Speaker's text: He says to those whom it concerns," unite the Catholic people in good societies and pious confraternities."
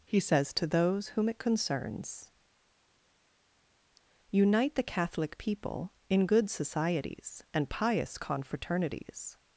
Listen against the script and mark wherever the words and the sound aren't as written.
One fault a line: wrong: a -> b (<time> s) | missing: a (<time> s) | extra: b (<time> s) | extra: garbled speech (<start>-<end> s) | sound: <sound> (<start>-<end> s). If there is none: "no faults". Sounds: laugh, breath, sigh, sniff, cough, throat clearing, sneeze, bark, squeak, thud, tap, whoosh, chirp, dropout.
no faults